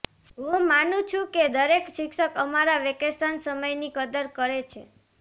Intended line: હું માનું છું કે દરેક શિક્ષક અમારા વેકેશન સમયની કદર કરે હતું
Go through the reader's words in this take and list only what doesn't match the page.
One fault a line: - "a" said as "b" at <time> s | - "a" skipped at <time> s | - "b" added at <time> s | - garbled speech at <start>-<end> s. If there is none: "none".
- "હતું" said as "છે" at 4.7 s